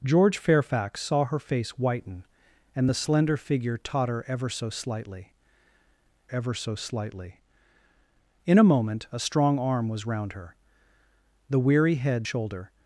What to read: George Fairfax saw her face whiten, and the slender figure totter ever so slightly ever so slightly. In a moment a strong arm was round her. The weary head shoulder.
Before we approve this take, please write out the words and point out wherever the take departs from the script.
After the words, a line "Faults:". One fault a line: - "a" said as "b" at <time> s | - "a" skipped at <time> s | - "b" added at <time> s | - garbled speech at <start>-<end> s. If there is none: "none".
George Fairfax saw her face whiten, and the slender figure totter ever so slightly ever so slightly. In a moment a strong arm was round her. The weary head shoulder.
Faults:
none